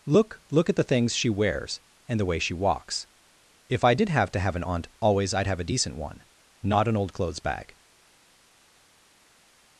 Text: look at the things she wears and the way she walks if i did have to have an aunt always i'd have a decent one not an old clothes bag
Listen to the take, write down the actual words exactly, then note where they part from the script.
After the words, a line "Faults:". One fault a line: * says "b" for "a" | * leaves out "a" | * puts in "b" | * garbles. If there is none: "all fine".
look look at the things she wears and the way she walks if i did have to have an aunt always i'd have a decent one not an old clothes bag
Faults:
* puts in "look"